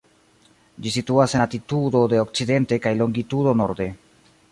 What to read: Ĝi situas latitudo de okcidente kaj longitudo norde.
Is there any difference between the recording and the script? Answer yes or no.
no